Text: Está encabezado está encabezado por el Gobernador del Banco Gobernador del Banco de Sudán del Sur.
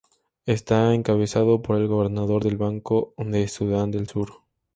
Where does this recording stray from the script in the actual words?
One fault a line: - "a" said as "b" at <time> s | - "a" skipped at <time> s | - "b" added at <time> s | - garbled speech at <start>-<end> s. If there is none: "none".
- "está encabezado" skipped at 1.6 s
- "Gobernador del Banco" skipped at 3.2 s